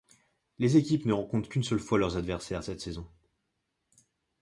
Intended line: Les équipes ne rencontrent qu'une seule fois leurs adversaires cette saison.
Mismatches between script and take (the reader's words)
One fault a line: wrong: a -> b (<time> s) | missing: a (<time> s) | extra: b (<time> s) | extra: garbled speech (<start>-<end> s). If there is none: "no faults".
no faults